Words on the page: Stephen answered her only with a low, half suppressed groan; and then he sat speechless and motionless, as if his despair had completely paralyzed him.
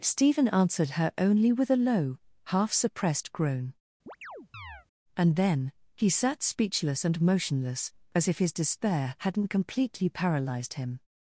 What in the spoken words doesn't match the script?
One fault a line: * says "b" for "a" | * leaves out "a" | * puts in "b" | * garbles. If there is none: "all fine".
* says "hadn't" for "had"